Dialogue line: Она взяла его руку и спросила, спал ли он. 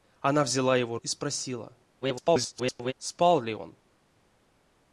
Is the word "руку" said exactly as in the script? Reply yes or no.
no